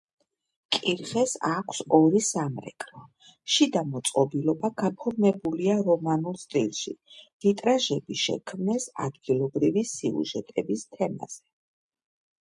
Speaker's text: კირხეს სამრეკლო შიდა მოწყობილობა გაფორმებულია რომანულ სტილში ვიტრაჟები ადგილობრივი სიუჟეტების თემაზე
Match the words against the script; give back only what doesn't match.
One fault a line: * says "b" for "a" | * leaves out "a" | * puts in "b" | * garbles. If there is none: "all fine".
* puts in "აქვს ორი"
* puts in "შექმნეს"